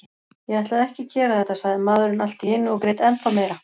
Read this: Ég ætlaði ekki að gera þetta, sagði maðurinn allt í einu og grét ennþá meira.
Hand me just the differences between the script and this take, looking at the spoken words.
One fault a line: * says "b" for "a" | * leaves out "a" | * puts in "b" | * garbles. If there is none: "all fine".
all fine